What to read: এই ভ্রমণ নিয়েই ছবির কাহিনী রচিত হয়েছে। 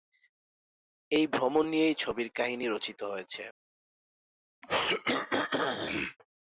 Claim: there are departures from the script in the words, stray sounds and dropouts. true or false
true